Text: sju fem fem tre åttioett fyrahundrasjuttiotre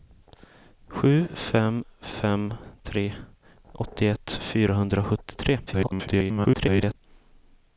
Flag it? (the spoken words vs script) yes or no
yes